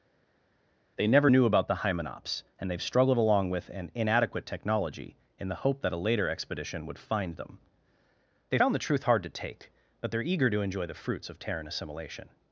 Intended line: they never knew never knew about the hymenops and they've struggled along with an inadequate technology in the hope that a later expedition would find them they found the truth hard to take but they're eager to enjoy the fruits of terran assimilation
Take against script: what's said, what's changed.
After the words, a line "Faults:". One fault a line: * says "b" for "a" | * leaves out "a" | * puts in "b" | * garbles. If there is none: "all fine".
they never knew about the hymenops and they've struggled along with an inadequate technology in the hope that a later expedition would find them they found the truth hard to take but they're eager to enjoy the fruits of terran assimilation
Faults:
* leaves out "never knew"